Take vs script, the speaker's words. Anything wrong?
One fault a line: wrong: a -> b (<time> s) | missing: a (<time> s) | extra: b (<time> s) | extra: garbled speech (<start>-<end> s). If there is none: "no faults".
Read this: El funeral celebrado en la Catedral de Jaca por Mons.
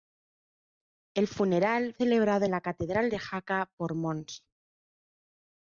no faults